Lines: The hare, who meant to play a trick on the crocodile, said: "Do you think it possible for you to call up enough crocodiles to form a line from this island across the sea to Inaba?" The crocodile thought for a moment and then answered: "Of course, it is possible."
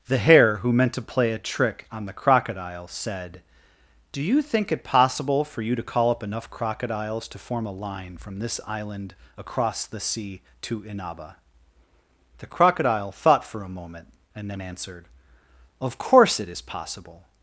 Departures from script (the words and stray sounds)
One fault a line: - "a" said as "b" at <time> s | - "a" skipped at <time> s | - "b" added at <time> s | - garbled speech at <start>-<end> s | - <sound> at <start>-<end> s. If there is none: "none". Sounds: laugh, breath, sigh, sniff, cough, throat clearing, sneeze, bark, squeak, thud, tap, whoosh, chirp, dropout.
none